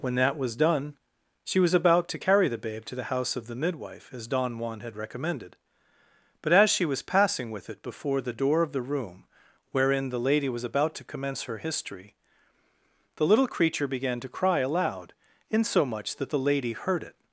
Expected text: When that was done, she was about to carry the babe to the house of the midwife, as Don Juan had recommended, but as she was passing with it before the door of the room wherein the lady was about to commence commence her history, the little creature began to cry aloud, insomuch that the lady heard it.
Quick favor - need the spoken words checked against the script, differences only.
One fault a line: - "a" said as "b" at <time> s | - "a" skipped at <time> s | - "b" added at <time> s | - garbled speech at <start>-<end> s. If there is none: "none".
- "commence" skipped at 11.4 s